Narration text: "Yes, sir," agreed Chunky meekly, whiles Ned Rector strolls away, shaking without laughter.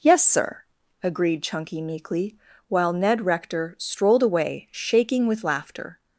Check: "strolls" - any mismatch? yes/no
yes